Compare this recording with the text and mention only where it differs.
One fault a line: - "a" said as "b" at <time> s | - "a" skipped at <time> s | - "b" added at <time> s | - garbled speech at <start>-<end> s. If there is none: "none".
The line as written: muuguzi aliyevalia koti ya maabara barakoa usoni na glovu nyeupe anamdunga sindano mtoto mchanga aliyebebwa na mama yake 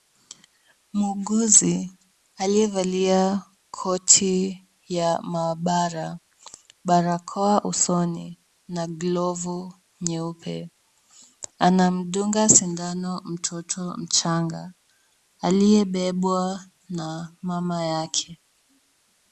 none